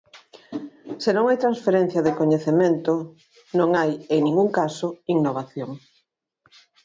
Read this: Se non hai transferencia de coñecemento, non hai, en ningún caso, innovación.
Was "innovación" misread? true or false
false